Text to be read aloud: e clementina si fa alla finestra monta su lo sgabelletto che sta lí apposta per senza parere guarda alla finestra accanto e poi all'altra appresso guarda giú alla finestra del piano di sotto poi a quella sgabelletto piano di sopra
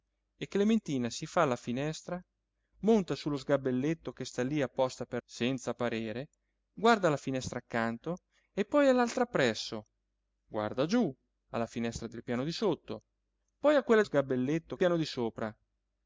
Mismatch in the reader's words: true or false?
false